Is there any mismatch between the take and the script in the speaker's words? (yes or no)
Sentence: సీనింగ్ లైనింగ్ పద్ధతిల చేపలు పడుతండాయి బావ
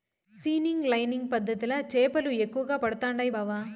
yes